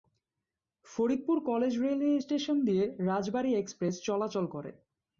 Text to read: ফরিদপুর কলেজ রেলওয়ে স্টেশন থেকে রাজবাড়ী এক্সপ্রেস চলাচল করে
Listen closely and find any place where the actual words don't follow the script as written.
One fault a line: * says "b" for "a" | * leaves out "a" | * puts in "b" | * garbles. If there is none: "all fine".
* says "দিয়ে" for "থেকে"